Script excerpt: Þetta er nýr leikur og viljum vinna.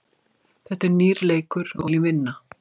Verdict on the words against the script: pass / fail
pass